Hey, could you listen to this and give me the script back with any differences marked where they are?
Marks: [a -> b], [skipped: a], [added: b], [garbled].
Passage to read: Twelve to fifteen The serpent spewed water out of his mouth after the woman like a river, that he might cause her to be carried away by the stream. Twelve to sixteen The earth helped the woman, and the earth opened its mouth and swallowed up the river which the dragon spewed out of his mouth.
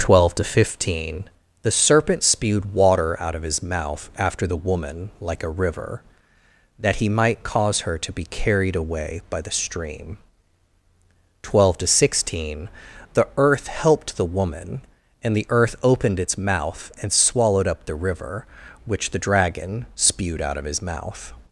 Twelve to fifteen The serpent spewed water out of his mouth after the woman like a river, that he might cause her to be carried away by the stream. Twelve to sixteen The earth helped the woman, and the earth opened its mouth and swallowed up the river which the dragon spewed out of his mouth.